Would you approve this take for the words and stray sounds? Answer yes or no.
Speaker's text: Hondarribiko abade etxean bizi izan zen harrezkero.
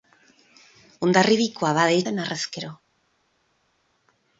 no